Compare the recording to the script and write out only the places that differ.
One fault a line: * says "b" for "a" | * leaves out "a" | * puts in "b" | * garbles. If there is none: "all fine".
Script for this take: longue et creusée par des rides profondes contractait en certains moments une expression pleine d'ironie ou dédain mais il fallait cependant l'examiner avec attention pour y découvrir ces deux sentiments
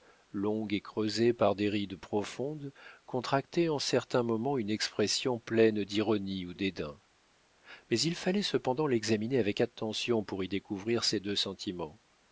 all fine